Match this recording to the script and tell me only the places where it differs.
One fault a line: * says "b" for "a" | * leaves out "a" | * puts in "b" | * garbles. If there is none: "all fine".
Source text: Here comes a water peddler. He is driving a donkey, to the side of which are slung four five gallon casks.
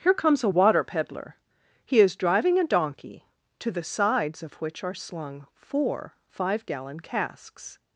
* says "sides" for "side"